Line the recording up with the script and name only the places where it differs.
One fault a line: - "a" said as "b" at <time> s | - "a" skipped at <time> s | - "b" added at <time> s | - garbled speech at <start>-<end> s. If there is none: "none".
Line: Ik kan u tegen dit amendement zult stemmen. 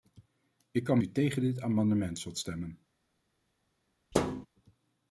none